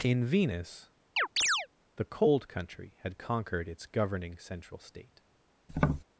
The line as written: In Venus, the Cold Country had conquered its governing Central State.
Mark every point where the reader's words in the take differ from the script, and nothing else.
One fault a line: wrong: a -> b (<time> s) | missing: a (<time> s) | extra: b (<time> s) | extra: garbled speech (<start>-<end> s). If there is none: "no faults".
no faults